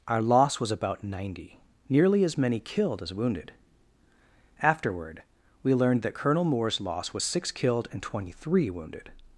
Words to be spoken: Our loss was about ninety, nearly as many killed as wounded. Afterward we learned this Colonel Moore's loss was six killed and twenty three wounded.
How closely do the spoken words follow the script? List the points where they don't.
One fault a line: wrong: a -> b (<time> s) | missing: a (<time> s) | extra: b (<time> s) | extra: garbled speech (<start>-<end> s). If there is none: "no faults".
wrong: this -> that (6.0 s)